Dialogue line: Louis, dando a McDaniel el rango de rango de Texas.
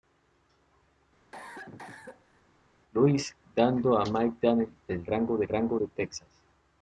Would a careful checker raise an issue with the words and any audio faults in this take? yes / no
yes